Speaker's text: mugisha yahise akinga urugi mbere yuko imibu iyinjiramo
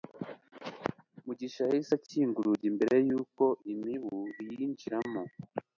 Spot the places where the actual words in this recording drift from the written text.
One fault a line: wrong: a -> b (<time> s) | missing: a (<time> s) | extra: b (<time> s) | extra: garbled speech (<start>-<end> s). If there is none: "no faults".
no faults